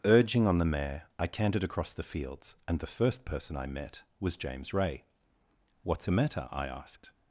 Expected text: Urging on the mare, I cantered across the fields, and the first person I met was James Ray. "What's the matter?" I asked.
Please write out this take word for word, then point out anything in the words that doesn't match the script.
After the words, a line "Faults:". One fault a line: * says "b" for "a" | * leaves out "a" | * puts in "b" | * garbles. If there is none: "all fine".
Urging on the mare, I cantered across the fields, and the first person I met was James Ray. "What's a matter?" I asked.
Faults:
* says "a" for "the"